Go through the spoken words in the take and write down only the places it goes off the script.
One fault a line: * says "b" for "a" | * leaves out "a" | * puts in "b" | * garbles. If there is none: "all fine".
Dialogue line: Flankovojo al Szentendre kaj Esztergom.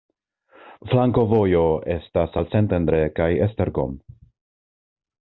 * puts in "estas"